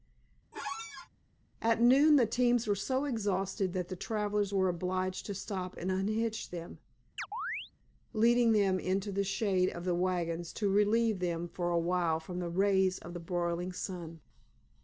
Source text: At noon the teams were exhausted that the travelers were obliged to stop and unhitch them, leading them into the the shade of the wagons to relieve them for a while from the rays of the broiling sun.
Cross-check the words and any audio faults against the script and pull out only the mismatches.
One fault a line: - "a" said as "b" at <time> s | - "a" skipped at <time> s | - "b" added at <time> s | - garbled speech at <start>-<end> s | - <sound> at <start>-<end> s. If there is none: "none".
- squeak at 0.5-1.1 s
- "so" added at 2.7 s
- chirp at 7.2-7.7 s
- "the" skipped at 9.3 s